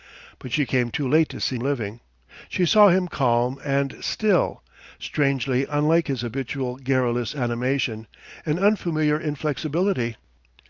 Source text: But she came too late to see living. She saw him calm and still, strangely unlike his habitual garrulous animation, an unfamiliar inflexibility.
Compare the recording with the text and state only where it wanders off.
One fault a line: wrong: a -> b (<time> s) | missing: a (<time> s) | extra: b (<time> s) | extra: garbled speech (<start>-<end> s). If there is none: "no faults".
no faults